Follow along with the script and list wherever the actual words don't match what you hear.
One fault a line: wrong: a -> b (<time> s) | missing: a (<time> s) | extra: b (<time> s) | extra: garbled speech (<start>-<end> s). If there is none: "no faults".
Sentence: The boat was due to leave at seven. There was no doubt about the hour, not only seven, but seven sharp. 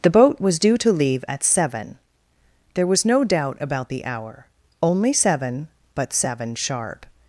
missing: not (4.4 s)